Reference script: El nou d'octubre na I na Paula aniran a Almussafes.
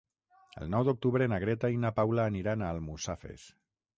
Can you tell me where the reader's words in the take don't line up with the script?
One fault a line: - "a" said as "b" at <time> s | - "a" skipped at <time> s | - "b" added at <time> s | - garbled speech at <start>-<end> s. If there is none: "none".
- "Greta" added at 1.4 s